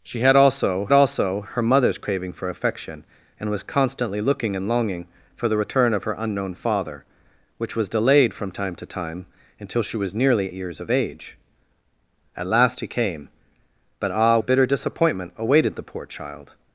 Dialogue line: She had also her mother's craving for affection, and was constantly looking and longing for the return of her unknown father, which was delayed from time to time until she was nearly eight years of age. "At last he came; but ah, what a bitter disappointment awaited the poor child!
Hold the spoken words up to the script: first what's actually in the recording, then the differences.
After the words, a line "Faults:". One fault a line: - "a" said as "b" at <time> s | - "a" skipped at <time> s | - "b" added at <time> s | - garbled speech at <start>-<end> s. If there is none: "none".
She had also also her mother's craving for affection, and was constantly looking and longing for the return of her unknown father, which was delayed from time to time until she was nearly years of age. "At last he came; but ah, a bitter disappointment awaited the poor child!
Faults:
- "also" added at 0.9 s
- "eight" skipped at 10.5 s
- "what" skipped at 14.4 s